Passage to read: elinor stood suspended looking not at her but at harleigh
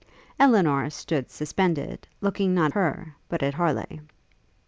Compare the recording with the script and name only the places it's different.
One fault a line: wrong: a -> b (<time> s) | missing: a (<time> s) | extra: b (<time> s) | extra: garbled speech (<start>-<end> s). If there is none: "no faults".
missing: at (2.7 s)